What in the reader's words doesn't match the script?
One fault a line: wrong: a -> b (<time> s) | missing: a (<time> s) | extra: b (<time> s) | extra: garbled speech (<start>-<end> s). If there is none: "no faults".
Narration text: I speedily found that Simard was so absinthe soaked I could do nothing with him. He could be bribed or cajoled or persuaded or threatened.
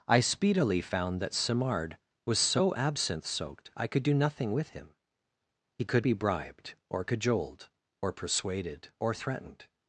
no faults